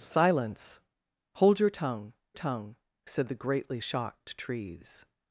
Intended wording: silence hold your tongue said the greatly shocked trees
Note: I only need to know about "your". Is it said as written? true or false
true